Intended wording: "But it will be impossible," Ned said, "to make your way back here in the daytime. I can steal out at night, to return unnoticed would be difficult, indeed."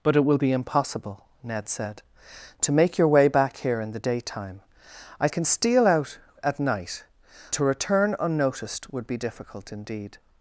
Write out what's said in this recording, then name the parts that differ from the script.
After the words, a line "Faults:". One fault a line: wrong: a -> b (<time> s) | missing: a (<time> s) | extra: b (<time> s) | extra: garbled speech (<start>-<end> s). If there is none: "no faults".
"But it will be impossible," Ned said, "to make your way back here in the daytime. I can steal out at night, to return unnoticed would be difficult, indeed."
Faults:
no faults